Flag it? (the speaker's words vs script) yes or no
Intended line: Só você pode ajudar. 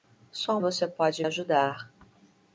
no